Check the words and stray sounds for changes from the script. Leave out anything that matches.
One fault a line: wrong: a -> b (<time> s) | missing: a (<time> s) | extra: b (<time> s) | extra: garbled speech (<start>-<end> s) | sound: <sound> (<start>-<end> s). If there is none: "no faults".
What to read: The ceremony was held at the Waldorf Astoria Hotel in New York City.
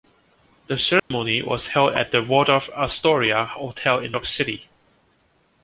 sound: dropout (1.0-1.1 s)
missing: New (4.2 s)